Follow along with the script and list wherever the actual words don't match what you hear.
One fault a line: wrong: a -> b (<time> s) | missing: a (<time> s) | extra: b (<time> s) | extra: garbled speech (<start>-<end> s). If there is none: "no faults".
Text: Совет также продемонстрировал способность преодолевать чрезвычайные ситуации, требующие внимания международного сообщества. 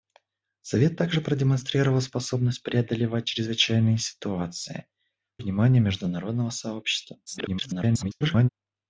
missing: требующие (4.9 s)
extra: garbled speech (7.3-8.5 s)